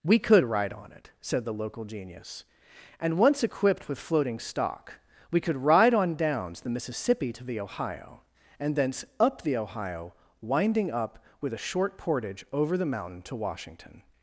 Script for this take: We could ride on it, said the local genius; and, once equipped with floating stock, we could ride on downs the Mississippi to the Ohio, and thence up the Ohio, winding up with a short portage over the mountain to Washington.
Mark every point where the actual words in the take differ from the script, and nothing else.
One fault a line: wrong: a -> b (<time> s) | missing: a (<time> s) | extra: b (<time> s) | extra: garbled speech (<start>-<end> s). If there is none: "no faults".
no faults